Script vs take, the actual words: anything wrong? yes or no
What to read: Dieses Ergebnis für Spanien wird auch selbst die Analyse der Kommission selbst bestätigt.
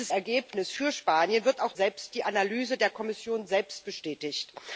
no